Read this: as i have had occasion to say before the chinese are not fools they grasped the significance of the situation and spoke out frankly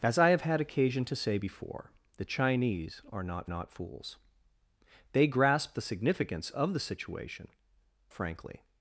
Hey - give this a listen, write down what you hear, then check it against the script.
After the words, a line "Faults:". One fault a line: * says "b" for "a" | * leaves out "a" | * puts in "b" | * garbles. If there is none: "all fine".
as i have had occasion to say before the chinese are not not fools they grasped the significance of the situation frankly
Faults:
* puts in "not"
* leaves out "and spoke out"